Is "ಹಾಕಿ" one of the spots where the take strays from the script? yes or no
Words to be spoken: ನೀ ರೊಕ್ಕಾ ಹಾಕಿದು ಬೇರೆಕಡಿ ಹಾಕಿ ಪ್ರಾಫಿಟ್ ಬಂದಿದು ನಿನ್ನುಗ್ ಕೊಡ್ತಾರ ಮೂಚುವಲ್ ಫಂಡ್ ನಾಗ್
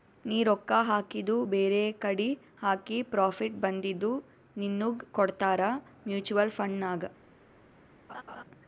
no